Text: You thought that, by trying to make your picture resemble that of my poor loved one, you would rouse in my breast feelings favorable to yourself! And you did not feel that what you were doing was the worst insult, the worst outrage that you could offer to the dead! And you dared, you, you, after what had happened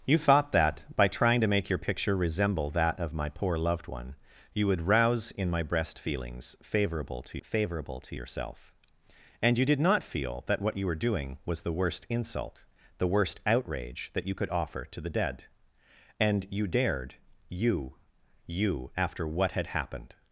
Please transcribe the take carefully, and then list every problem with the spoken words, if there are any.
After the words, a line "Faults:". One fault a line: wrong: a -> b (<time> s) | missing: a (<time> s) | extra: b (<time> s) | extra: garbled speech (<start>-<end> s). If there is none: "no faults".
You thought that, by trying to make your picture resemble that of my poor loved one, you would rouse in my breast feelings favorable to favorable to yourself! And you did not feel that what you were doing was the worst insult, the worst outrage that you could offer to the dead! And you dared, you, you, after what had happened
Faults:
extra: favorable to (7.4 s)